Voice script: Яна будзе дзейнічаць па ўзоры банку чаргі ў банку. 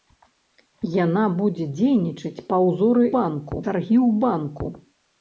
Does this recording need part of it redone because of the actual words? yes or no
no